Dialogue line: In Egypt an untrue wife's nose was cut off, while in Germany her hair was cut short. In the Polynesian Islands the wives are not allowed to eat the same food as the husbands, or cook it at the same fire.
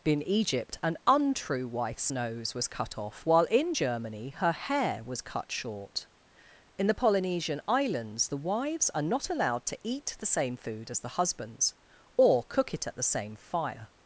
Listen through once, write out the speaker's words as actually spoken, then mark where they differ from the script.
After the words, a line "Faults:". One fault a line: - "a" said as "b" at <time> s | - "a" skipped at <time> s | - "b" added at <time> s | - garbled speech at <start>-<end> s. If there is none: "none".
In Egypt an untrue wife's nose was cut off, while in Germany her hair was cut short. In the Polynesian Islands the wives are not allowed to eat the same food as the husbands, or cook it at the same fire.
Faults:
none